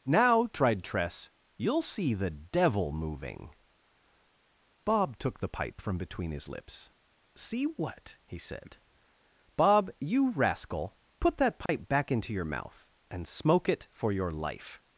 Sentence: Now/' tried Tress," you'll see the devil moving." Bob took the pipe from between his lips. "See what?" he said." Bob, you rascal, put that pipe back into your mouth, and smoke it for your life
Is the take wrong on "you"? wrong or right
right